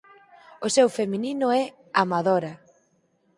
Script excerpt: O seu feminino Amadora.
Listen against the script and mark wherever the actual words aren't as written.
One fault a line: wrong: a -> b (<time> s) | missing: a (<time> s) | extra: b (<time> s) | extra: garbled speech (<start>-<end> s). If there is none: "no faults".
extra: é (1.5 s)